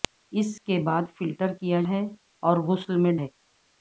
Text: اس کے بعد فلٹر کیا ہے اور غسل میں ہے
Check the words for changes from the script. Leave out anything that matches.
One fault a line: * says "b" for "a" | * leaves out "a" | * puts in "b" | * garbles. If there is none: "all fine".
all fine